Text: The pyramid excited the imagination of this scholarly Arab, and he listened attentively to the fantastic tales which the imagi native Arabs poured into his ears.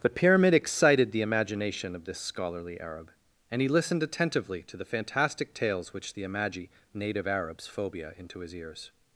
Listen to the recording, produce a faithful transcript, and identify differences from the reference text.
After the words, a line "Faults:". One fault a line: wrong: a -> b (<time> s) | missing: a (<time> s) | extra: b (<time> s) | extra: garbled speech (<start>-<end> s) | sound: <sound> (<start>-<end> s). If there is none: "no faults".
The pyramid excited the imagination of this scholarly Arab, and he listened attentively to the fantastic tales which the imagi native Arabs phobia into his ears.
Faults:
wrong: poured -> phobia (7.7 s)